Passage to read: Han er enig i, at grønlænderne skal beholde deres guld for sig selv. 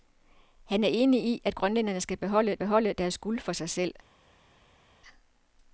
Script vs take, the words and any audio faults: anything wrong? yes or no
yes